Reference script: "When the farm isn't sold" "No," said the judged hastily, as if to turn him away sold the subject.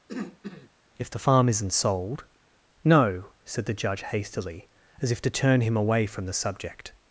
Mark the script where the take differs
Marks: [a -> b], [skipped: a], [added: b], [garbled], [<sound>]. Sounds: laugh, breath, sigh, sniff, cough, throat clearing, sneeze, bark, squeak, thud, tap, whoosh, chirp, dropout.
[throat clearing] ["When -> If] the farm isn't sold" "No," said the [judged -> judge] hastily, as if to turn him away [sold -> from] the subject.